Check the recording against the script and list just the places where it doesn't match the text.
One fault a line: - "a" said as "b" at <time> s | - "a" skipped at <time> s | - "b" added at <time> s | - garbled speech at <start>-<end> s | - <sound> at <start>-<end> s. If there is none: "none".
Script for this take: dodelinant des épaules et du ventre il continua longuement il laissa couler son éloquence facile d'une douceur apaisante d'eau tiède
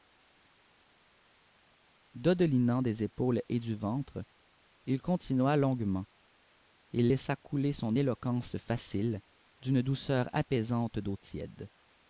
none